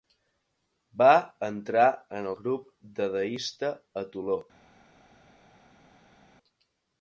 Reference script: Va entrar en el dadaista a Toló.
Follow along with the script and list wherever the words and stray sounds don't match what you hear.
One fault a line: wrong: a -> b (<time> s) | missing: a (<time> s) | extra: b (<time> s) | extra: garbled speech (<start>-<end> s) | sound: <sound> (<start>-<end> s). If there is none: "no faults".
extra: grup (2.4 s)